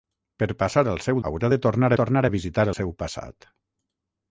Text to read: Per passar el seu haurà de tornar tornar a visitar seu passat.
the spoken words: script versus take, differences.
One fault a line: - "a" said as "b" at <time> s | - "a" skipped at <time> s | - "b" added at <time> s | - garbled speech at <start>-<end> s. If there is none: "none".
none